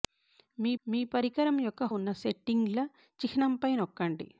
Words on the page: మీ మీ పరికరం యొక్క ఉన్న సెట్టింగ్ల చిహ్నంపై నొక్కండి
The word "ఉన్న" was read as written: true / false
true